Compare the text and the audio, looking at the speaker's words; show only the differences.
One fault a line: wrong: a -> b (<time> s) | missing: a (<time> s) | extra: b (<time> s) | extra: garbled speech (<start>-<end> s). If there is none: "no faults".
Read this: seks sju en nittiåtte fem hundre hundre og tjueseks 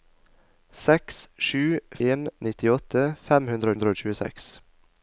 no faults